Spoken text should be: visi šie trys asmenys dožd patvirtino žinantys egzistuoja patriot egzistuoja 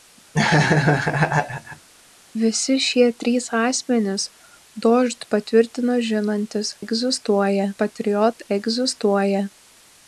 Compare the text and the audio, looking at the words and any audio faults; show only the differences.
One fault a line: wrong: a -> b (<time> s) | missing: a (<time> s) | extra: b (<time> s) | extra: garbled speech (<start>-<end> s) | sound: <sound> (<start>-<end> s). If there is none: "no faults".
sound: laugh (0.3-1.9 s)